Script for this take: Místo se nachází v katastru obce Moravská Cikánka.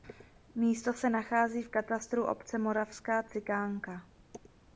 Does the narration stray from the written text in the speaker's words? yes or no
no